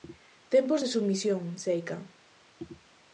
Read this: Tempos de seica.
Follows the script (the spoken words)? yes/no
no